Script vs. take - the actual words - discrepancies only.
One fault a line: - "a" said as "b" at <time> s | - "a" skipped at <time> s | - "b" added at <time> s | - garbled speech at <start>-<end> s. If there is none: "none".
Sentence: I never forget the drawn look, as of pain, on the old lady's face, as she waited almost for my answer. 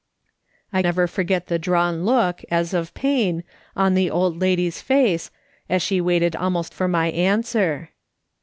none